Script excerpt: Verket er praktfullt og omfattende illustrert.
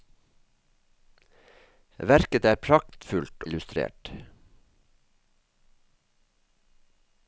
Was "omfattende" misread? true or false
true